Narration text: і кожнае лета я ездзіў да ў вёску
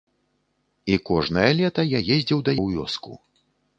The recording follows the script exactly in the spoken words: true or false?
true